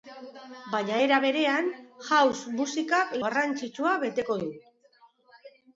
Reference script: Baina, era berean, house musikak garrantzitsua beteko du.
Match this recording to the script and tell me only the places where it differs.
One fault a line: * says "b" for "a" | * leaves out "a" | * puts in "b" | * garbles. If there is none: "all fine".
all fine